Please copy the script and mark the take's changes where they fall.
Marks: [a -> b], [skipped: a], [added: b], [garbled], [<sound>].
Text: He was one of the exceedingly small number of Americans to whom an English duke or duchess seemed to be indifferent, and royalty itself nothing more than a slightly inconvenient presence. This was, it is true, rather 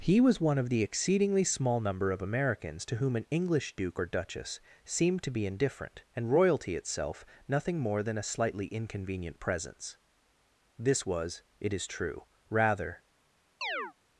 He was one of the exceedingly small number of Americans to whom an English duke or duchess seemed to be indifferent, and royalty itself nothing more than a slightly inconvenient presence. This was, it is true, rather [chirp]